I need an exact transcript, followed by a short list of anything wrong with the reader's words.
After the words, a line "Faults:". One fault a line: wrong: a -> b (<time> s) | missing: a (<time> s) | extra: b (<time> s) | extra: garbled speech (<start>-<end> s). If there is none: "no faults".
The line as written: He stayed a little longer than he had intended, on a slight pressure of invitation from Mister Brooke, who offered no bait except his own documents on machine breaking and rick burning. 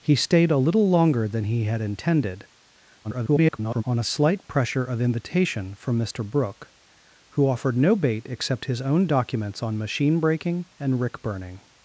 He stayed a little longer than he had intended, [garbled] on a slight pressure of invitation from Mister Brooke, who offered no bait except his own documents on machine breaking and rick burning.
Faults:
extra: garbled speech (3.0-3.8 s)